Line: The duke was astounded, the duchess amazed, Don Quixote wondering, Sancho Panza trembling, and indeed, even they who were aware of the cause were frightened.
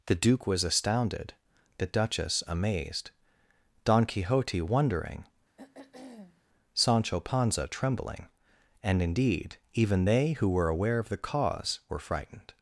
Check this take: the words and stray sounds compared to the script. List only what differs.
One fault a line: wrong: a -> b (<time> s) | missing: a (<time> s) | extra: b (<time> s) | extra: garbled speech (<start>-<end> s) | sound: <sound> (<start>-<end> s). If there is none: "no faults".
sound: throat clearing (5.6-6.4 s)